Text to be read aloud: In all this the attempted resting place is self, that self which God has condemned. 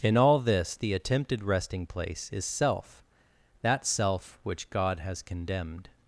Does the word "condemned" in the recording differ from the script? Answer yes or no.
no